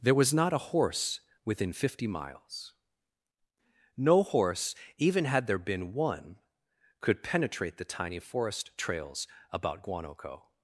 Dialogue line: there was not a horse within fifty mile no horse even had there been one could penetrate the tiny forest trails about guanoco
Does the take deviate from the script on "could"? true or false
false